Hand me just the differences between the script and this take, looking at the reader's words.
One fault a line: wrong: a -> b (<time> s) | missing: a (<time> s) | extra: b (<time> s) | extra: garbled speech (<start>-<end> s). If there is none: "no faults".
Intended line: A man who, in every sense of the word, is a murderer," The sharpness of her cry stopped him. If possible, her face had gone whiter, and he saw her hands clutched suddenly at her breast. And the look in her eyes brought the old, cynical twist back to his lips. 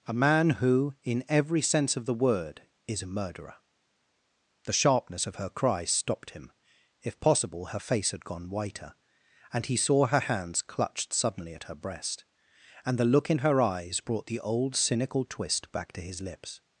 no faults